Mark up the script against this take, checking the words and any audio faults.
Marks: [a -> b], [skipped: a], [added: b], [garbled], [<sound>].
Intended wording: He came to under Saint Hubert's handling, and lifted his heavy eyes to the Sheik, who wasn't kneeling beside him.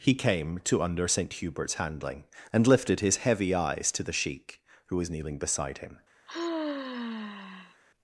He came to under Saint Hubert's handling, and lifted his heavy eyes to the Sheik, who [wasn't -> was] kneeling beside him. [sigh]